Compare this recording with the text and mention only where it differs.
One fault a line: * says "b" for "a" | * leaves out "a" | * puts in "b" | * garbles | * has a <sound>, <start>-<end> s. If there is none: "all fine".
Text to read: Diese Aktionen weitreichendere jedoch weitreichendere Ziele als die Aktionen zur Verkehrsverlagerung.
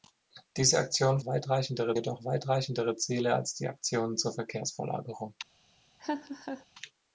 * has a laugh, 6.0-6.7 s